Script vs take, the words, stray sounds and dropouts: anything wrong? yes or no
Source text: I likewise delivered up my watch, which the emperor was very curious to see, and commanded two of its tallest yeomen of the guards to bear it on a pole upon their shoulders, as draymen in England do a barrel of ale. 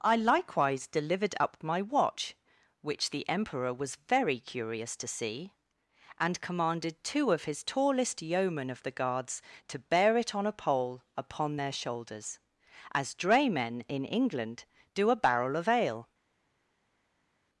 yes